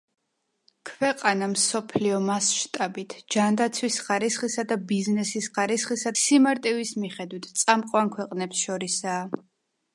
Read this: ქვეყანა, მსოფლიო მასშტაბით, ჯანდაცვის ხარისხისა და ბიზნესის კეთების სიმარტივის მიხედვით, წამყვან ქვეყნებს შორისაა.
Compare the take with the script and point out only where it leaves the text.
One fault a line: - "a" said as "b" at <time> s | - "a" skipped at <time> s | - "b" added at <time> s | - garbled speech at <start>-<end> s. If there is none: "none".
- "კეთების" said as "ხარისხისა" at 5.5 s